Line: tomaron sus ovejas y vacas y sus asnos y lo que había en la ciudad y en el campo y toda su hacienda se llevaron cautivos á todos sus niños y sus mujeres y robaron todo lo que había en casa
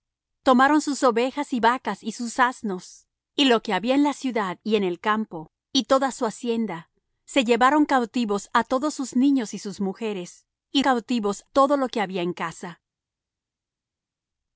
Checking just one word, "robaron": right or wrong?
wrong